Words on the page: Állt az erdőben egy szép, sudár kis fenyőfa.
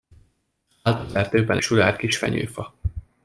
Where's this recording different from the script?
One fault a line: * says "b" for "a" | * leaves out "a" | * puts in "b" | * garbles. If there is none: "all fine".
* leaves out "egy szép"